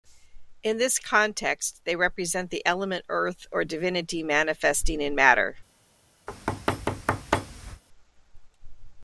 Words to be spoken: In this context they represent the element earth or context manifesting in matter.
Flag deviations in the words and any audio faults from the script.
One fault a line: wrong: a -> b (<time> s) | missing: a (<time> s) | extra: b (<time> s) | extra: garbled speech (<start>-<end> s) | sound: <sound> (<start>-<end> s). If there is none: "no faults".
wrong: context -> divinity (3.6 s)
sound: thud (6.3-7.8 s)